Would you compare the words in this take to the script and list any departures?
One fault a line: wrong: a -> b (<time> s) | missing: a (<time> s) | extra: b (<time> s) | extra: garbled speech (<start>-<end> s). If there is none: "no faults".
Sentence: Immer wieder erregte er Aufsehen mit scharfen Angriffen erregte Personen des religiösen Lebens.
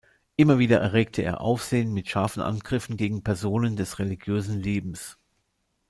wrong: erregte -> gegen (2.9 s)